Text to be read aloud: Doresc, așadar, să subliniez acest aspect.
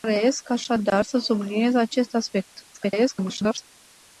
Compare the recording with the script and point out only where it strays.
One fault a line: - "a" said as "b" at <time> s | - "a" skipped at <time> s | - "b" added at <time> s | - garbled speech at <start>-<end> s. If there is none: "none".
- garbled speech at 2.7-3.6 s